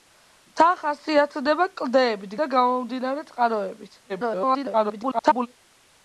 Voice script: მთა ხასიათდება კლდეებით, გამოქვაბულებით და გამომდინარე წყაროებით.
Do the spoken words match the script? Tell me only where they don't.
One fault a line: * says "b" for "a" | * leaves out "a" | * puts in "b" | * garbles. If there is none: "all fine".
* leaves out "გამოქვაბულებით"
* garbles